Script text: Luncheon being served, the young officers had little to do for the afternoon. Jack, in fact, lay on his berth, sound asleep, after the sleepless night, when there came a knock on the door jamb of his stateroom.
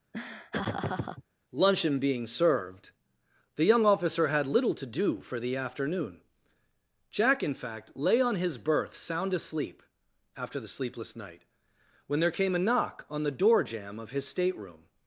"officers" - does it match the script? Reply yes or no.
no